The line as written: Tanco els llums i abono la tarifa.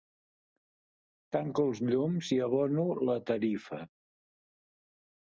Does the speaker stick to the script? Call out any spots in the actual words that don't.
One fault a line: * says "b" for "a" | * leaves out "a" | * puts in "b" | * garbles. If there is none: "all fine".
all fine